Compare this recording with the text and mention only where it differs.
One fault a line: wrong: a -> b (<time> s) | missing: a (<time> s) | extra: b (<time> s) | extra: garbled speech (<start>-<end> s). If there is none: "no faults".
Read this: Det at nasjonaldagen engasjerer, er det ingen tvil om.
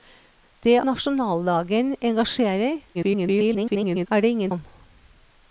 missing: at (0.8 s)
extra: garbled speech (2.9-4.1 s)
missing: tvil (4.5 s)